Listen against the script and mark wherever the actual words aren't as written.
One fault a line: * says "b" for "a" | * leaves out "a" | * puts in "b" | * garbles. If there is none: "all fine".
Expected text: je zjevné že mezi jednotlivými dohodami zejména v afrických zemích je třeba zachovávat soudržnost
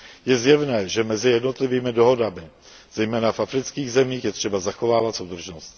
all fine